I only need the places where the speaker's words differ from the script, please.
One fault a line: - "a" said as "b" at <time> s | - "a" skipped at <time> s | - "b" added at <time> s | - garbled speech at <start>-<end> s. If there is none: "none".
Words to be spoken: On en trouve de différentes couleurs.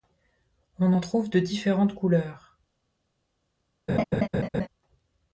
none